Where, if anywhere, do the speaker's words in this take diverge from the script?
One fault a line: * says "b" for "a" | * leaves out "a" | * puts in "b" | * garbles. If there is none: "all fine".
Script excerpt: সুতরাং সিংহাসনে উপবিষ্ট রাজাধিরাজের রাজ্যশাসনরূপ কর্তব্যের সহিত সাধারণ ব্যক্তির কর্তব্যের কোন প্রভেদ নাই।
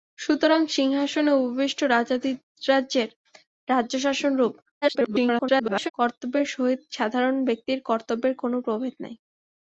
* garbles